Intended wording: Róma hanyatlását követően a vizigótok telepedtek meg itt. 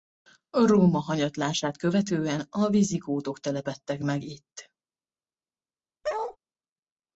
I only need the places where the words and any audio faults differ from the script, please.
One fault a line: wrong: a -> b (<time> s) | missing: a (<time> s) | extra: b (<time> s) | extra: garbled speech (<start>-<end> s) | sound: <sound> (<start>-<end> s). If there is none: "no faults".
sound: bark (6.0-6.4 s)